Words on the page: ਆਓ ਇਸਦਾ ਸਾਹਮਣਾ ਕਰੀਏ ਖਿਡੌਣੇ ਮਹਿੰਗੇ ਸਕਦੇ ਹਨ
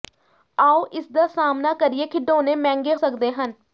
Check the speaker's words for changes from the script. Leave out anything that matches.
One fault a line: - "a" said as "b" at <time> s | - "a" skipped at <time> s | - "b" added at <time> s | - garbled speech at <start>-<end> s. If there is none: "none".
none